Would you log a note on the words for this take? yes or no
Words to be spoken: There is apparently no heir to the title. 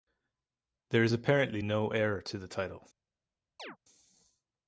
no